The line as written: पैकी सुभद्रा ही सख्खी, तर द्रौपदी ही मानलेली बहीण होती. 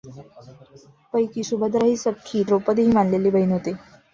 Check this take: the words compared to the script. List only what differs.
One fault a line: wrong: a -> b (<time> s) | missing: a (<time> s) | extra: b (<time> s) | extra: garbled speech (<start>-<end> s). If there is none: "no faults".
missing: तर (2.4 s)